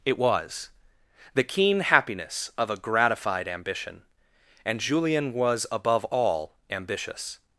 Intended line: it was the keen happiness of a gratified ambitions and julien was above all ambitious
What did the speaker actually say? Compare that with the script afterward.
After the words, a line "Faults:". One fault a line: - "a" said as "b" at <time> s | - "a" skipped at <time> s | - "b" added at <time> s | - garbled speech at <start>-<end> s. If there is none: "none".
it was the keen happiness of a gratified ambition and julien was above all ambitious
Faults:
- "ambitions" said as "ambition" at 3.5 s